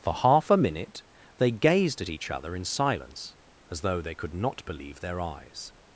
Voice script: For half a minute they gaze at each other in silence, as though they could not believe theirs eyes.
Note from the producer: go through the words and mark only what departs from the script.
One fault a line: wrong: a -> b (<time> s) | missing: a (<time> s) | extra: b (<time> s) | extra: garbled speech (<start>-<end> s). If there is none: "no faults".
wrong: gaze -> gazed (1.5 s)
wrong: theirs -> their (5.0 s)